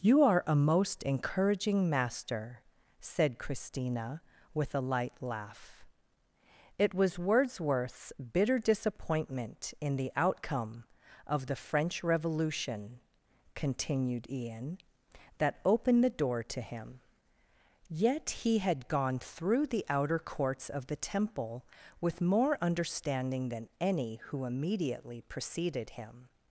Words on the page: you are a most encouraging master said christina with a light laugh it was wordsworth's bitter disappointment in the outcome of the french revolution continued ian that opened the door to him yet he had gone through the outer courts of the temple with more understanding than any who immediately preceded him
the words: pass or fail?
pass